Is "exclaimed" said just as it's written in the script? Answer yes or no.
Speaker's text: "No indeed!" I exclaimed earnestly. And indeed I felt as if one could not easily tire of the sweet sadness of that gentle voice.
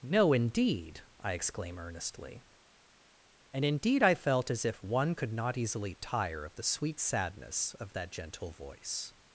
no